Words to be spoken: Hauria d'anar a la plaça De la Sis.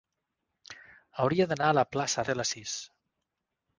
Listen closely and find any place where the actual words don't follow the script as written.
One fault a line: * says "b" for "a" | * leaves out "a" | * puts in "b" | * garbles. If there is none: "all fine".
all fine